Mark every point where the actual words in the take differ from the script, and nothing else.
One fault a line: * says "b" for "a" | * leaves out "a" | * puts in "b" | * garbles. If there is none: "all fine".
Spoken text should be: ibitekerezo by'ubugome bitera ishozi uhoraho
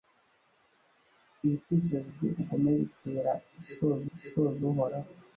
* puts in "ishozi"